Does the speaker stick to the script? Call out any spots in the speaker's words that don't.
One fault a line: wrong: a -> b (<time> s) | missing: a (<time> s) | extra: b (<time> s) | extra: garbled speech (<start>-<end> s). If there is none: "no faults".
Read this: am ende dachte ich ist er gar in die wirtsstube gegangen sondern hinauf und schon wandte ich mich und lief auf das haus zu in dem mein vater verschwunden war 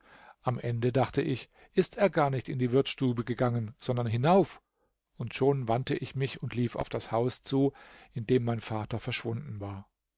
extra: nicht (2.3 s)